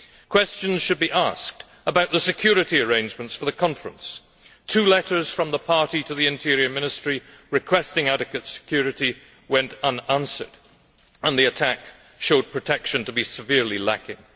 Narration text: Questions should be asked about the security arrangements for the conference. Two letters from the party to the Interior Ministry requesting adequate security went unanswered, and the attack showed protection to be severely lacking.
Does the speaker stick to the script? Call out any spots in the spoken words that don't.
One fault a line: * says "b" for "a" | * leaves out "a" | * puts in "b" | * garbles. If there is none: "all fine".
all fine